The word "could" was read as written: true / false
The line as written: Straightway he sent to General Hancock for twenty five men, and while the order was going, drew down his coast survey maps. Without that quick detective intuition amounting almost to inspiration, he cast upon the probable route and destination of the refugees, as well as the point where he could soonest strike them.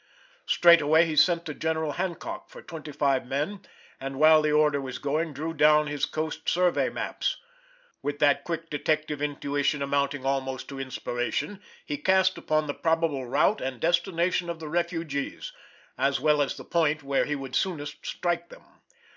false